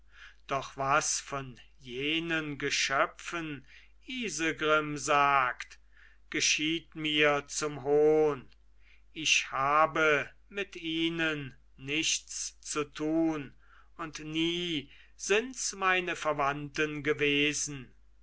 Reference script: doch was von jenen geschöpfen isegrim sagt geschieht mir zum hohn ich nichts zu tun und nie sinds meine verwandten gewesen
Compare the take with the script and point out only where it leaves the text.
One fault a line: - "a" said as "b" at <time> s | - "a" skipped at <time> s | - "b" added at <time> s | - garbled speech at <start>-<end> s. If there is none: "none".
- "habe mit ihnen" added at 9.5 s